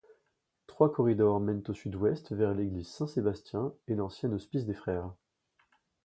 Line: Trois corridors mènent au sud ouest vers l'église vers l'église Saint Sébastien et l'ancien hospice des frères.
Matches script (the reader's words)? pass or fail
fail